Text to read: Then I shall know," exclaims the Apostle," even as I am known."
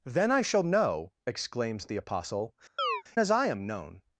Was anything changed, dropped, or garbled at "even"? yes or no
yes